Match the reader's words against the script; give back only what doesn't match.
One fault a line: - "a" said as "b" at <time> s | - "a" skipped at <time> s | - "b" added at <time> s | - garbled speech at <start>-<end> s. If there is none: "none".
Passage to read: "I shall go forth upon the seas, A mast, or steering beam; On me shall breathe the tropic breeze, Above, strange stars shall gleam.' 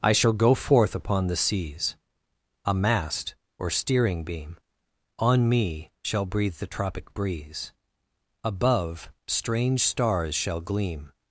none